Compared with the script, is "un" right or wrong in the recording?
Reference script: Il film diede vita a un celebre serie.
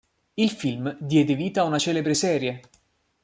wrong